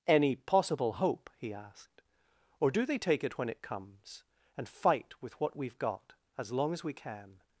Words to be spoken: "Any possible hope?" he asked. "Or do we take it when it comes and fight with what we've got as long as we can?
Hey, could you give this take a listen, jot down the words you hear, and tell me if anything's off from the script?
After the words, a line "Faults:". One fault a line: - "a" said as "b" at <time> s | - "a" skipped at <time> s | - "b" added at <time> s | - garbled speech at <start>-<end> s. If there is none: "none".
"Any possible hope?" he asked. "Or do they take it when it comes and fight with what we've got as long as we can?
Faults:
- "we" said as "they" at 2.9 s